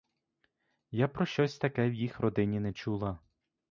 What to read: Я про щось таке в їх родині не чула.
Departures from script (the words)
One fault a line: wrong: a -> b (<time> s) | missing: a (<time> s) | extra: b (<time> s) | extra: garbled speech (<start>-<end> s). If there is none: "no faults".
no faults